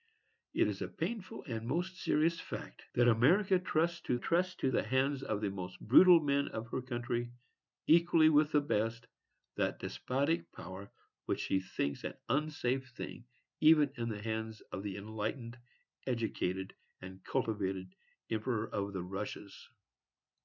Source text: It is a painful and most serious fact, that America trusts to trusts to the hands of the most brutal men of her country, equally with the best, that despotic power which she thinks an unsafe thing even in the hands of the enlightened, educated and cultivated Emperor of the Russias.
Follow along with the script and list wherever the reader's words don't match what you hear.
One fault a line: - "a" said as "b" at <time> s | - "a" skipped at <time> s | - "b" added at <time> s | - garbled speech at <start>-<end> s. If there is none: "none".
none